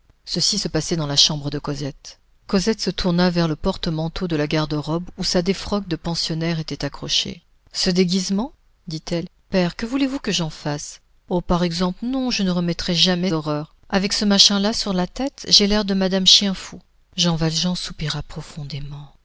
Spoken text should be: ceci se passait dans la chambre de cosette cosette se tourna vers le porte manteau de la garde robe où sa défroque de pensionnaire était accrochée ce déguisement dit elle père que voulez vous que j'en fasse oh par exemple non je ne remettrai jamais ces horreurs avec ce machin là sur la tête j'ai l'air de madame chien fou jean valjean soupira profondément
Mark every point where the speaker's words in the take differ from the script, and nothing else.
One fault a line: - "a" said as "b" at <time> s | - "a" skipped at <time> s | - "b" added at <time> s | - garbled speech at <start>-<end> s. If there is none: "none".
- "ces" skipped at 13.3 s